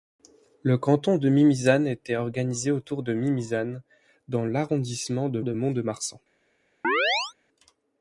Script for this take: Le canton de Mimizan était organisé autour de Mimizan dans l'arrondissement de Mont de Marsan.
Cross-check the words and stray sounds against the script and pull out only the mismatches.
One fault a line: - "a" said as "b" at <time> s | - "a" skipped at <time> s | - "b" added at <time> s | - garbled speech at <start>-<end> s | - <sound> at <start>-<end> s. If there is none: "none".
- "de" added at 5.4 s
- chirp at 6.8-7.3 s